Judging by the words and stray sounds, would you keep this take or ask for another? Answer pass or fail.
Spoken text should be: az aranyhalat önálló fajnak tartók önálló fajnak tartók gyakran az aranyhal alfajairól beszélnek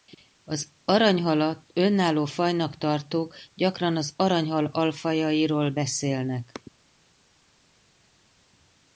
fail